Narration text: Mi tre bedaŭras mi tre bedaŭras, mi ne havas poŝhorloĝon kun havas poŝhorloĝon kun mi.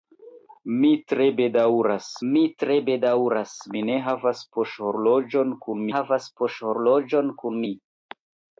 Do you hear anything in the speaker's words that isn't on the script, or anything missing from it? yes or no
no